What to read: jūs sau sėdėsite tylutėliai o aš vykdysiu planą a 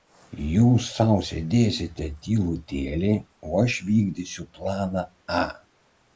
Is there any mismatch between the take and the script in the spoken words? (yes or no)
no